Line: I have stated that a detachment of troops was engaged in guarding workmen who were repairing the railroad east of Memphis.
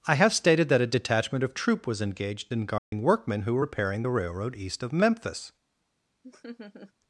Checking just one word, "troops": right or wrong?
wrong